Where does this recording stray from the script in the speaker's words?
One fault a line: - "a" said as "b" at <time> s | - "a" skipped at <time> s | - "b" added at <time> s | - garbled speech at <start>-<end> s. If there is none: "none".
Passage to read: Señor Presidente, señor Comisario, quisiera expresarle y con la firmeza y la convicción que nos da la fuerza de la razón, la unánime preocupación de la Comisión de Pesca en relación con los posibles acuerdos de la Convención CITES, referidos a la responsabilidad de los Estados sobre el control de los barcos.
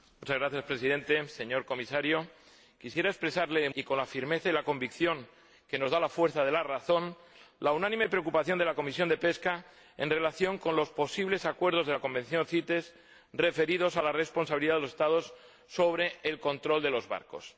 none